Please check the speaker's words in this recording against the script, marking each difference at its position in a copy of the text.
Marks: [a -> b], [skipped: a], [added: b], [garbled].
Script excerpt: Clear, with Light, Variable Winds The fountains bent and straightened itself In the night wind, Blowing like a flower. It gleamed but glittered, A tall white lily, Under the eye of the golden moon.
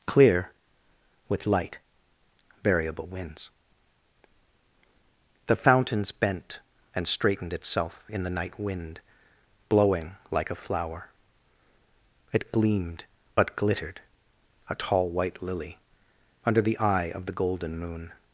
Clear, with Light, Variable Winds The fountains bent and straightened itself In the night wind, Blowing like a flower. It gleamed but glittered, A tall white lily, Under the eye of the golden moon.